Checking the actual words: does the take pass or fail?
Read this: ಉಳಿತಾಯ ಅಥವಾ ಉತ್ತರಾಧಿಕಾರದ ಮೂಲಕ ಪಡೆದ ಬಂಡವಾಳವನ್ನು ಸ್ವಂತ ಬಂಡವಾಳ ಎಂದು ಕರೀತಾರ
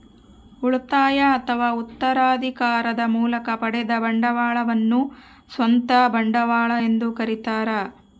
pass